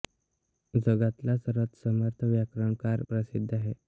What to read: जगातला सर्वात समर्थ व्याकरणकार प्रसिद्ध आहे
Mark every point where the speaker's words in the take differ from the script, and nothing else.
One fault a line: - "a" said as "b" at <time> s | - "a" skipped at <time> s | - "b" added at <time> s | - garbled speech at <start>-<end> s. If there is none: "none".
none